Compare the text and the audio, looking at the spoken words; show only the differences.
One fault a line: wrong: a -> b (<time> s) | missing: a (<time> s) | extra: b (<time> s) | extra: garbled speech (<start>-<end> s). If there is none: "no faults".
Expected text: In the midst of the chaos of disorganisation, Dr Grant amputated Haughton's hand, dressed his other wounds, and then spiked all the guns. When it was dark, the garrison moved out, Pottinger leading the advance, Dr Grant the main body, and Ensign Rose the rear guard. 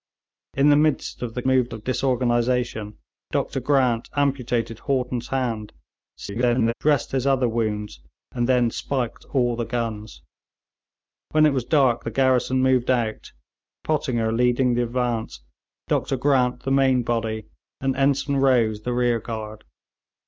wrong: chaos -> moved (1.4 s)
extra: garbled speech (6.2-6.7 s)